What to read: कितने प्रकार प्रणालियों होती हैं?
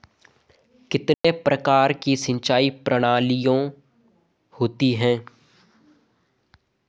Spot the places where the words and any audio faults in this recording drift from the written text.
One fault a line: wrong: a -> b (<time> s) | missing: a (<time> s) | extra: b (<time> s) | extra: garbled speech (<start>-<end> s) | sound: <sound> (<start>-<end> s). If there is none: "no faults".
sound: dropout (1.1-1.2 s)
extra: की सिंचाई (1.9 s)